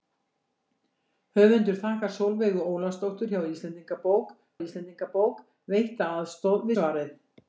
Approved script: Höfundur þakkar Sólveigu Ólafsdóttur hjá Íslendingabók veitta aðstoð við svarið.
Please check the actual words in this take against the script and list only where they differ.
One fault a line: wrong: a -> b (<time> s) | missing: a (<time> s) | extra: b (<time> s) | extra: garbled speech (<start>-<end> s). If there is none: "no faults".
extra: Íslendingabók (4.7 s)
missing: við (6.7 s)